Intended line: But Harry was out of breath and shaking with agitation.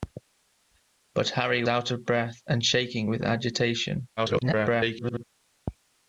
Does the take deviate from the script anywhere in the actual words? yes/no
yes